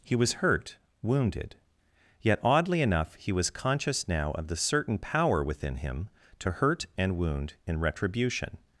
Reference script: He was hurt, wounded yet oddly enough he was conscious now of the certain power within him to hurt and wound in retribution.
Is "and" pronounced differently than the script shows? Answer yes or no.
no